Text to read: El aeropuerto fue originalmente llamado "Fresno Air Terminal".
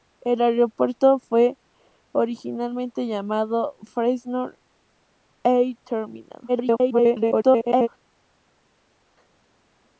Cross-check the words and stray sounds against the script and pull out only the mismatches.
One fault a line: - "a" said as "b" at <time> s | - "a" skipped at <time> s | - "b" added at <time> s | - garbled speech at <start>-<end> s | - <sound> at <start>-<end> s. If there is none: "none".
- garbled speech at 6.5-7.9 s